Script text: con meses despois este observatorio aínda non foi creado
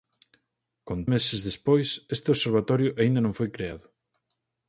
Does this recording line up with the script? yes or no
yes